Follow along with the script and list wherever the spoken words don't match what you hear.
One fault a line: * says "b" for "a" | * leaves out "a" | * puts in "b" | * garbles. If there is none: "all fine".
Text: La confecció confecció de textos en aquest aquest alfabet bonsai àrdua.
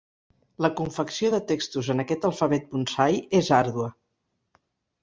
* leaves out "confecció"
* leaves out "aquest"
* puts in "és"